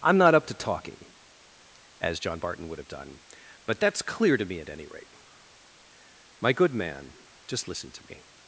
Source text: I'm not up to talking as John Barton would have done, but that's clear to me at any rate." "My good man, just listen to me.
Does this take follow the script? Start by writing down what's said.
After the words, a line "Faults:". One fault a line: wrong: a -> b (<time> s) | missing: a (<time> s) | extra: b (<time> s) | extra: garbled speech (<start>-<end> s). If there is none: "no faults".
I'm not up to talking as John Barton would have done, but that's clear to me at any rate." "My good man, just listen to me.
Faults:
no faults